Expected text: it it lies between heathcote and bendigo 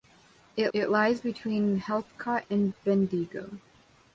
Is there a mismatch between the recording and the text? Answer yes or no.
no